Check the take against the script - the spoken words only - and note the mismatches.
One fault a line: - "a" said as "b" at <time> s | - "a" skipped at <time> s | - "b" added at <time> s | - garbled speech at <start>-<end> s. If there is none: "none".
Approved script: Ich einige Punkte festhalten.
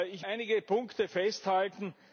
none